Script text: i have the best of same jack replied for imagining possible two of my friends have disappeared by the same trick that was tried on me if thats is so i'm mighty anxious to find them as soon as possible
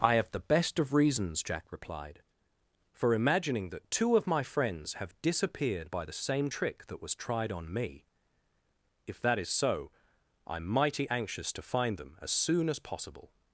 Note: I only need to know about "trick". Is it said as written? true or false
true